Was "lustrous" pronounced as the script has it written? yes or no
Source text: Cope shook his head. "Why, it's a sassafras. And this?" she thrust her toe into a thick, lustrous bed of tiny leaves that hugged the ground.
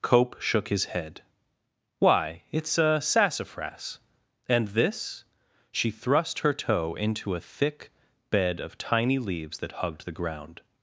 no